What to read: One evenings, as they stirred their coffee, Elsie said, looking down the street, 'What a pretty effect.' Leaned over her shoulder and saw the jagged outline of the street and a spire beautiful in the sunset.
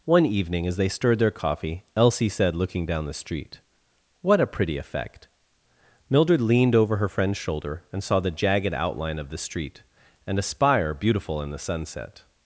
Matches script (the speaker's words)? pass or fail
fail